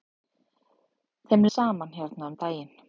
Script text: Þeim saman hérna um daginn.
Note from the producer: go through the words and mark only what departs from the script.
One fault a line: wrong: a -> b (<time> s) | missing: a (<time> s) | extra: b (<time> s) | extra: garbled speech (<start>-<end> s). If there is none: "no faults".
no faults